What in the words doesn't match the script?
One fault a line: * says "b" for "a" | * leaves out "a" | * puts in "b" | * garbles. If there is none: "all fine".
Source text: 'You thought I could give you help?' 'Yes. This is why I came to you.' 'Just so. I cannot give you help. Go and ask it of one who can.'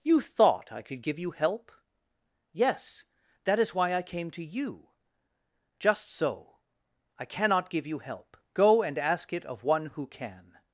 * says "That" for "This"